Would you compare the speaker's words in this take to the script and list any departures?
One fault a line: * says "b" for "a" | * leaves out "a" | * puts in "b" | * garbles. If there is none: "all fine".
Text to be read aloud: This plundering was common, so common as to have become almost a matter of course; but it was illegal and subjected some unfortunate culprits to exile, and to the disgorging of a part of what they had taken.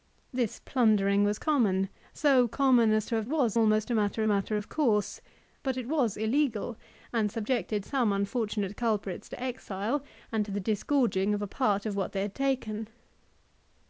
* says "was" for "become"
* puts in "matter"